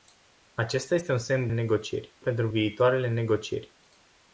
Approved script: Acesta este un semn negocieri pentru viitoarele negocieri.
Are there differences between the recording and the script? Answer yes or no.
no